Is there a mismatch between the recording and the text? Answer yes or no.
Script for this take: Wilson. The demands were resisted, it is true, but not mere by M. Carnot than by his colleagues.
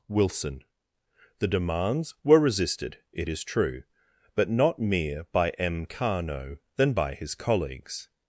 no